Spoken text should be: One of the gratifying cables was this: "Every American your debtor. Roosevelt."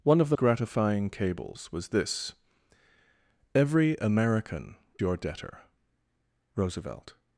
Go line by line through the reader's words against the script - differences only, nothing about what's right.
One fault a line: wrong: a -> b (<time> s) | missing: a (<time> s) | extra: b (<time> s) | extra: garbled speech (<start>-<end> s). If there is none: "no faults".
no faults